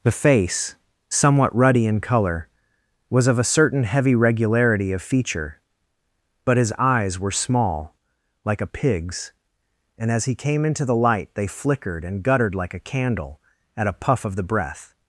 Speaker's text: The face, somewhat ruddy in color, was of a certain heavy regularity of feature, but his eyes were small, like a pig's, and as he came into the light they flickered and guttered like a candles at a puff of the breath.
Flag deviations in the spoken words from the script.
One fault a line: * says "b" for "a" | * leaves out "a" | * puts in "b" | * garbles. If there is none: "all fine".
* says "candle" for "candles"